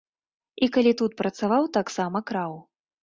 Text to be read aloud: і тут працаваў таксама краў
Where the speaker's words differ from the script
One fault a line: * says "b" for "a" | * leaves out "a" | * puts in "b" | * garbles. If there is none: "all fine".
* puts in "калі"